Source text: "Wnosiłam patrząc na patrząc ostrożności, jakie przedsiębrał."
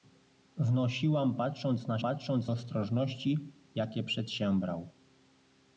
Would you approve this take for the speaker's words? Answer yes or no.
yes